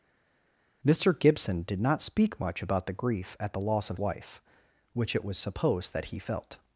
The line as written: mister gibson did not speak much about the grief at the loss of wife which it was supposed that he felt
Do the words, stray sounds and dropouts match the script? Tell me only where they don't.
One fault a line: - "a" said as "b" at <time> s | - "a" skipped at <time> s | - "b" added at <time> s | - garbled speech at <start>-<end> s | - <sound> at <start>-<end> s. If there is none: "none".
none